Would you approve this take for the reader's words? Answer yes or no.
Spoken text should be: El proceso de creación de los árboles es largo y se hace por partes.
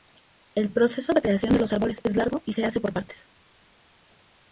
yes